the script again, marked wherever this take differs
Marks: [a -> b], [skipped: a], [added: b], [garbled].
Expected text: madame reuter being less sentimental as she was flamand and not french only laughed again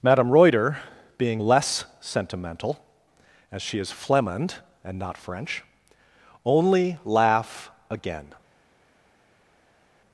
madame reuter being less sentimental as she [was -> is] flamand and not french only [laughed -> laugh] again